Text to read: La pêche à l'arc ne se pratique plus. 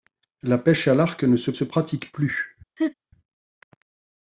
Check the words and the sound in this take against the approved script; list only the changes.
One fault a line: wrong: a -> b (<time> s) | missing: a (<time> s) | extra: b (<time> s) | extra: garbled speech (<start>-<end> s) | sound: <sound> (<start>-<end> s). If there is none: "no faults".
extra: se (1.5 s)
sound: laugh (2.8-2.9 s)